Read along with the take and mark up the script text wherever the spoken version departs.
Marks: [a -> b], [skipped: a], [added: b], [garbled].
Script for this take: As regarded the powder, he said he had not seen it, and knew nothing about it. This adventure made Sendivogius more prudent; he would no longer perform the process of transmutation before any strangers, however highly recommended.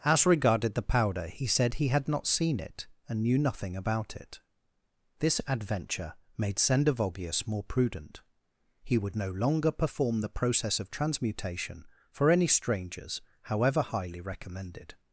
As regarded the powder, he said he had not seen it, and knew nothing about it. This adventure made Sendivogius more prudent; he would no longer perform the process of transmutation [before -> for] any strangers, however highly recommended.